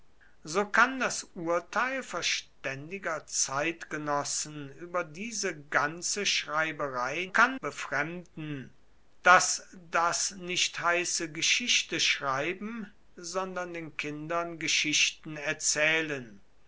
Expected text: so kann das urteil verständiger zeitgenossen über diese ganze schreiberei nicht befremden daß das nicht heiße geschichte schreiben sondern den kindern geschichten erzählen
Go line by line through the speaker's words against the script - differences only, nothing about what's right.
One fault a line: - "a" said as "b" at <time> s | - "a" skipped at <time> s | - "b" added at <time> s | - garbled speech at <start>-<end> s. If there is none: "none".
- "nicht" said as "kann" at 7.3 s